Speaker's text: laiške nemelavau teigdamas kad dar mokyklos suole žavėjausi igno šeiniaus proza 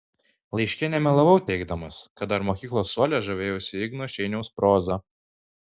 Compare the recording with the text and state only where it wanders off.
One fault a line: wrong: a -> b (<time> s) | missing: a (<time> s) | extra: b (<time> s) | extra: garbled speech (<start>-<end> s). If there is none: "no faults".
no faults